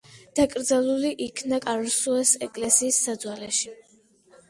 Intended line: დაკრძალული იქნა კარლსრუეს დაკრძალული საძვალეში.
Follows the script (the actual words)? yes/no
no